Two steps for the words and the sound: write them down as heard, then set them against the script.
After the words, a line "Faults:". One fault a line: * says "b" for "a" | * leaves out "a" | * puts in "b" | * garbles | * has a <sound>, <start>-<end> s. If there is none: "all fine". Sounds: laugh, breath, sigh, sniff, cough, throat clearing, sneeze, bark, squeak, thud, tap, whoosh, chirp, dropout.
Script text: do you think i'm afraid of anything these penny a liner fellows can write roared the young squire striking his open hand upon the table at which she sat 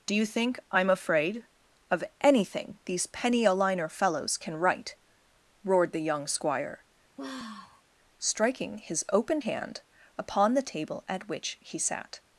do you think i'm afraid of anything these penny a liner fellows can write roared the young squire striking his open hand upon the table at which he sat
Faults:
* has a sigh, 7.2-7.8 s
* says "he" for "she"